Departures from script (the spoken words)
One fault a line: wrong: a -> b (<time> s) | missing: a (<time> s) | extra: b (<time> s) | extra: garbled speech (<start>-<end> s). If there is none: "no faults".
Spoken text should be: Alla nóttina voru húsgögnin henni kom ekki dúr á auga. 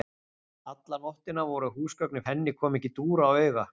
no faults